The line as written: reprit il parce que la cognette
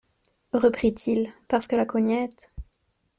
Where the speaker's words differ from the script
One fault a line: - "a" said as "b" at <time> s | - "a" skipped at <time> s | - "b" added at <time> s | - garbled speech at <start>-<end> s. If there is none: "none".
none